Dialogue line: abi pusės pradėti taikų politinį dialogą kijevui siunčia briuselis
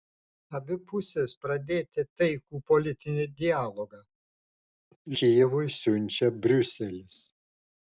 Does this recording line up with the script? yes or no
yes